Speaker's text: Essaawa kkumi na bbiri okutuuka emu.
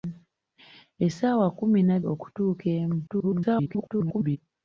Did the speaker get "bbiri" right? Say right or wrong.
wrong